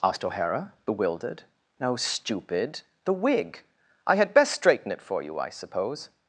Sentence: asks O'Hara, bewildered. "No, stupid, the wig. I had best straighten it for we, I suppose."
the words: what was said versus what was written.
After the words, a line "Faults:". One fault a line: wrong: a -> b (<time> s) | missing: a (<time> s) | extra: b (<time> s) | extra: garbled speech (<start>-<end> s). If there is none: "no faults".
asked O'Hara, bewildered. "No, stupid, the wig. I had best straighten it for you, I suppose."
Faults:
wrong: asks -> asked (0.0 s)
wrong: we -> you (5.2 s)